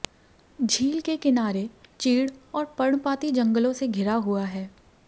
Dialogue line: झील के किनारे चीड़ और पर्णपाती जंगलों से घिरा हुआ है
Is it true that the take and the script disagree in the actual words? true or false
false